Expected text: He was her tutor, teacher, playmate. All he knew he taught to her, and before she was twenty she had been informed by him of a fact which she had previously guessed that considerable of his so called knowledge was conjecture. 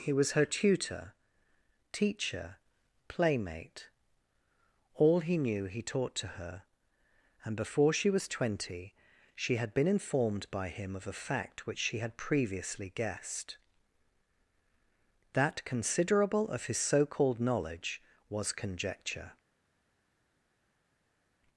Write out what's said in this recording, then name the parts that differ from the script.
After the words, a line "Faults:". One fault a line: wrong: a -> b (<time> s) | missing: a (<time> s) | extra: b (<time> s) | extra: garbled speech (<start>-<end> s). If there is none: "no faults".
He was her tutor, teacher, playmate. All he knew he taught to her, and before she was twenty she had been informed by him of a fact which she had previously guessed that considerable of his so called knowledge was conjecture.
Faults:
no faults